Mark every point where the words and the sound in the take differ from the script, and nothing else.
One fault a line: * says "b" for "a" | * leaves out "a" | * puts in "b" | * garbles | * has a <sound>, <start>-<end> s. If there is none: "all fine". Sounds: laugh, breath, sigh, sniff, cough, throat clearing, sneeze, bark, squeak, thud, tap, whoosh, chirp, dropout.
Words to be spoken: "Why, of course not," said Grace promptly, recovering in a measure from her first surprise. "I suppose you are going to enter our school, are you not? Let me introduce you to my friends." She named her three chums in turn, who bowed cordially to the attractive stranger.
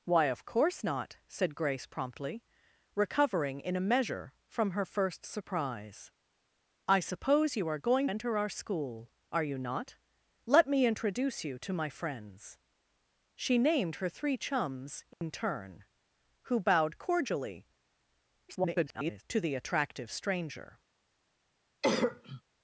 * leaves out "to"
* has a dropout, 15.1-15.2 s
* garbles
* has a cough, 21.8-22.4 s